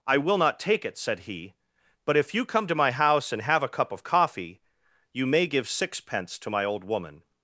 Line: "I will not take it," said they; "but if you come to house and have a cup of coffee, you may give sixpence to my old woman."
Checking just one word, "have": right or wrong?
right